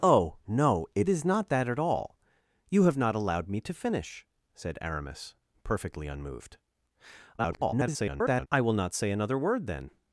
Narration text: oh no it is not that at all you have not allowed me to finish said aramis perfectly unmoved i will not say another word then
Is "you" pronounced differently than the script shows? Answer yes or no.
no